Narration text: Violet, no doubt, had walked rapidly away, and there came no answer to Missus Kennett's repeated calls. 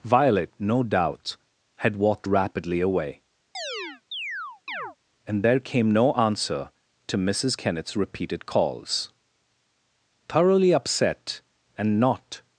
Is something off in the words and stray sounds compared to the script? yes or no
yes